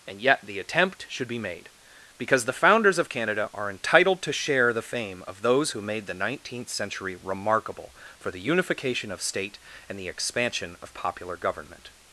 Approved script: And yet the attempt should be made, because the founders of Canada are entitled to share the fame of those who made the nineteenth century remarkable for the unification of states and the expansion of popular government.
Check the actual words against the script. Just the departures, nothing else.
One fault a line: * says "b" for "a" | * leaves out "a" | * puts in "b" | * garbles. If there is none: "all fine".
* says "state" for "states"